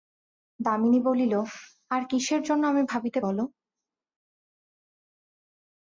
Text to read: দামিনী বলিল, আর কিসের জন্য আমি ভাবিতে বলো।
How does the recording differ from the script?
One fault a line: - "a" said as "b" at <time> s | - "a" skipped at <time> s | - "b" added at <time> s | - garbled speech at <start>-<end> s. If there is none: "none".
none